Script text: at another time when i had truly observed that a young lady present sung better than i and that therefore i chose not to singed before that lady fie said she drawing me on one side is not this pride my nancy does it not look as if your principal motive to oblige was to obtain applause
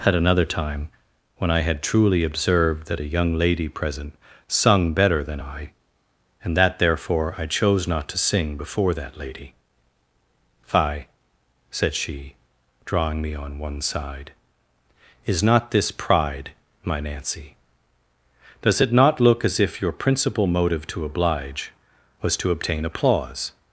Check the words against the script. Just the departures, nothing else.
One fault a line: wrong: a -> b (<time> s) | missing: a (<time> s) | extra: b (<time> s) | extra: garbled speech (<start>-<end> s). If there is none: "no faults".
wrong: singed -> sing (8.2 s)